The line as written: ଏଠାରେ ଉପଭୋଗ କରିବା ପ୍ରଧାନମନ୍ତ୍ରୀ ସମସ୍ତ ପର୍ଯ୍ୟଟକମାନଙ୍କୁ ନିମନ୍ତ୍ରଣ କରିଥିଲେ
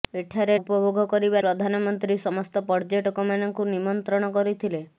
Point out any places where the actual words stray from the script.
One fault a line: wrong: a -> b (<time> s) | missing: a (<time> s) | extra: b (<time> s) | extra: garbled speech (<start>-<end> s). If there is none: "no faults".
no faults